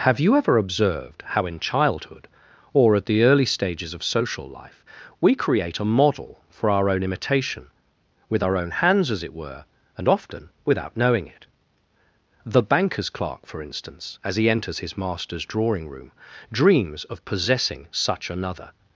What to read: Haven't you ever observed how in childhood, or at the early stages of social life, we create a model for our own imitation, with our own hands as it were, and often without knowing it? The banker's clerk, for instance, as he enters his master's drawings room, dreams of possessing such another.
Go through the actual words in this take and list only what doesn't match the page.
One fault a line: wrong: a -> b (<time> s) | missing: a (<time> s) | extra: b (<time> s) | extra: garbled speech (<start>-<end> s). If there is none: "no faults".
wrong: Haven't -> Have (0.0 s)
wrong: drawings -> drawing (15.4 s)